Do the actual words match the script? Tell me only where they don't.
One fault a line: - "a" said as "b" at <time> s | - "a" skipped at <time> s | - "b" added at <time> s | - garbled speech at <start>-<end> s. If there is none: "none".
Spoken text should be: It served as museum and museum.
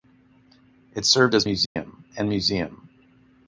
none